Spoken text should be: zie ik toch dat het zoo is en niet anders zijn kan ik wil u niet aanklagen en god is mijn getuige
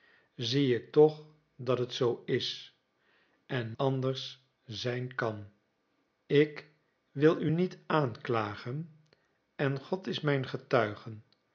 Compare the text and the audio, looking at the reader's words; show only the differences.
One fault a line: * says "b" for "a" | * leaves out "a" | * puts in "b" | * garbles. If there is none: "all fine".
* leaves out "niet"